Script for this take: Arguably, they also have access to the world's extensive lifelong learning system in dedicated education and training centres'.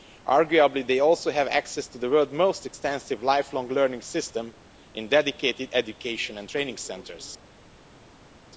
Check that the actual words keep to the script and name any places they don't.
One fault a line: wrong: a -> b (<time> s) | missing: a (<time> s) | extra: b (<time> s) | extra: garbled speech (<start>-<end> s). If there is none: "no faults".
extra: most (2.3 s)